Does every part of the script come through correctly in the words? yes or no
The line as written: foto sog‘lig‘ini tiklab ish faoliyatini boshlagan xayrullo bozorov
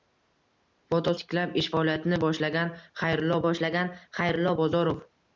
no